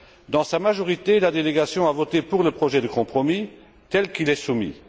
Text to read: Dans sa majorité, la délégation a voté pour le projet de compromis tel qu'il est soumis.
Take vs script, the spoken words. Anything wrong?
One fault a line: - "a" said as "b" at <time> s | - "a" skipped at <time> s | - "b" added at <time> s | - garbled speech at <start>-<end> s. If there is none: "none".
none